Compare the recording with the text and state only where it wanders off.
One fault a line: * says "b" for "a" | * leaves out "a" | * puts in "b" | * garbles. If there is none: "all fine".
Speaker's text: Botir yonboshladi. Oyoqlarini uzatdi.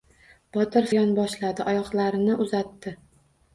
all fine